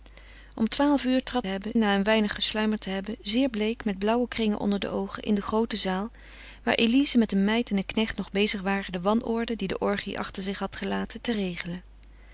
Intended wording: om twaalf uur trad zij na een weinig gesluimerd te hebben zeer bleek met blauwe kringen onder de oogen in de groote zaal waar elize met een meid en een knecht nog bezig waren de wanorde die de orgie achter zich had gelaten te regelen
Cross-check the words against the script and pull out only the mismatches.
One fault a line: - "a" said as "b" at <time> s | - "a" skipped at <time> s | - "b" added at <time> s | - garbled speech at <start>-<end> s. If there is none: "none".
- "zij" said as "hebben" at 1.5 s